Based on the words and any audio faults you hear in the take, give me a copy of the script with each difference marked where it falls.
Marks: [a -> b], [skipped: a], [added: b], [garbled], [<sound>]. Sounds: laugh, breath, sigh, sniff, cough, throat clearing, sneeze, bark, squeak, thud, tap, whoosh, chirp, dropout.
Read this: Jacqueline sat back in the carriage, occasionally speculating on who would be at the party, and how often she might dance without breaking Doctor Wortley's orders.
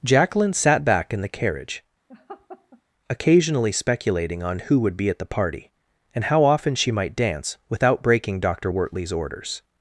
Jacqueline sat back in the carriage, [laugh] occasionally speculating on who would be at the party, and how often she might dance without breaking Doctor Wortley's orders.